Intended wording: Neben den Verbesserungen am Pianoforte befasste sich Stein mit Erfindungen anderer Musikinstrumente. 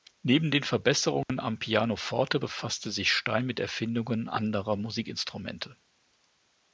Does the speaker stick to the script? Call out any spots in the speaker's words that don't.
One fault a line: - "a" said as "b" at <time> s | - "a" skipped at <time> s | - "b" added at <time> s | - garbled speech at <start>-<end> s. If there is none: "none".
none